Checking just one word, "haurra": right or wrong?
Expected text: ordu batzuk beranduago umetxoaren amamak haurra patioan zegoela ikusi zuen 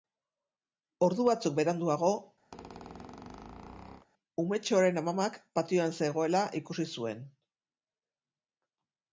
wrong